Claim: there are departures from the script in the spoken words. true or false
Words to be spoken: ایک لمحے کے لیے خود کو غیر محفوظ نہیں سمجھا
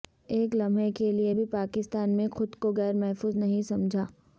true